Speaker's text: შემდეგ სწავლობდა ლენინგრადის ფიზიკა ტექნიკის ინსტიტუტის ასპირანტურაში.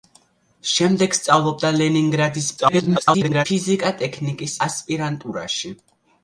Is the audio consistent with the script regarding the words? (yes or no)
no